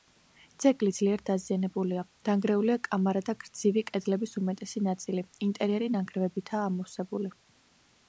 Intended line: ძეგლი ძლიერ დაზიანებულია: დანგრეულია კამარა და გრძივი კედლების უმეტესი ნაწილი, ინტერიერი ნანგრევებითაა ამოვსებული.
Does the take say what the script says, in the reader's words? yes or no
yes